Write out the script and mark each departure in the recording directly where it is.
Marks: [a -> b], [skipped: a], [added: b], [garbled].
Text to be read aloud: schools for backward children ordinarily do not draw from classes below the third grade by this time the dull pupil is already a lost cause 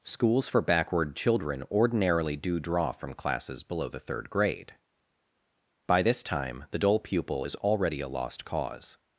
schools for backward children ordinarily do [skipped: not] draw from classes below the third grade by this time the dull pupil is already a lost cause